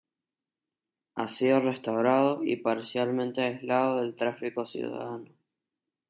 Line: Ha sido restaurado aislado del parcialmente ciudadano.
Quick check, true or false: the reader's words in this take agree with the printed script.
false